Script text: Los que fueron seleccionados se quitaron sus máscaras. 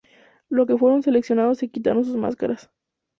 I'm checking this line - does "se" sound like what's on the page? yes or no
yes